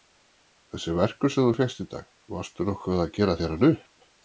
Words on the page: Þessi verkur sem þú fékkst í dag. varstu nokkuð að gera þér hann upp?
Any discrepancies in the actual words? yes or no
no